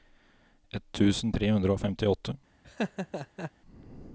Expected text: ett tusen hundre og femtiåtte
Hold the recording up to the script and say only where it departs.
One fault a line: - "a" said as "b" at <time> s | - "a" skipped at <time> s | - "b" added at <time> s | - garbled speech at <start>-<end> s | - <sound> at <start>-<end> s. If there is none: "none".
- "tre" added at 1.3 s
- laugh at 2.6-3.5 s